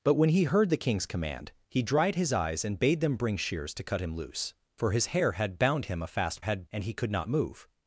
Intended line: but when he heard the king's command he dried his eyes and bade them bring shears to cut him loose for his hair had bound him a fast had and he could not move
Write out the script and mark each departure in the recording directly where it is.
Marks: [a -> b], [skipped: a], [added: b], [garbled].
but when he heard the king's command he dried his eyes and bade them bring shears to cut him loose for his hair had bound him a fast had and he could not move